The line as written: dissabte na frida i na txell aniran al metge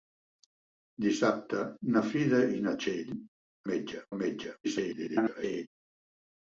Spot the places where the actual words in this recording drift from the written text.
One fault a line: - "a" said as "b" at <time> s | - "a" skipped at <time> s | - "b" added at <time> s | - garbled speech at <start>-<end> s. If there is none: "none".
- "aniran" said as "metge" at 3.7 s
- garbled speech at 4.6-5.7 s